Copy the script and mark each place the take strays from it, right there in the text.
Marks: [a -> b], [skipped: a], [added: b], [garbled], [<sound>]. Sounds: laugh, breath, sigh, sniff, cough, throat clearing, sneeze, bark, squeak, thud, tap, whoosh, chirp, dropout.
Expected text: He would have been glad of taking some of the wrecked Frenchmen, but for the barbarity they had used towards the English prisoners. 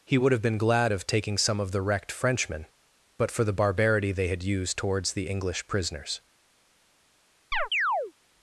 He would have been glad of taking some of the wrecked Frenchmen, but for the barbarity they had used towards the English prisoners. [chirp]